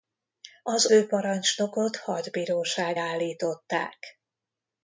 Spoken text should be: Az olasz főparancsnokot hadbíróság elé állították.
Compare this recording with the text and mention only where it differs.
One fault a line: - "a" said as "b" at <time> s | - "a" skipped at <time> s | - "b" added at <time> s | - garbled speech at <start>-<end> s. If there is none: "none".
- "olasz" skipped at 0.9 s
- "elé" skipped at 3.0 s